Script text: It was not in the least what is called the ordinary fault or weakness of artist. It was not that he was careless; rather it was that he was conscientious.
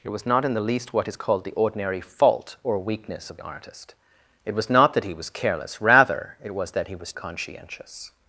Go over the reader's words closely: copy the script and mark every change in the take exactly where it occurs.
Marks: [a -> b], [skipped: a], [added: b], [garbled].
It was not in the least what is called the ordinary fault or weakness of artist. It was not that he was careless; rather it was that he was conscientious.